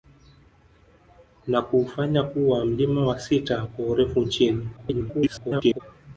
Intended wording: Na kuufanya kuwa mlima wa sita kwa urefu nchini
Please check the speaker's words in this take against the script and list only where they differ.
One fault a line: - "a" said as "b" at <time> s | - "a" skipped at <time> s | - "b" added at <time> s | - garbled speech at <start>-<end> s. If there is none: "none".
- garbled speech at 4.8-5.8 s